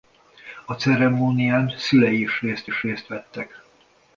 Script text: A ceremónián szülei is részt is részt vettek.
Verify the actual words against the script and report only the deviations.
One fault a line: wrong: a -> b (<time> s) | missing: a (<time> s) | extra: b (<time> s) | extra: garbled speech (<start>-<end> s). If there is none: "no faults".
no faults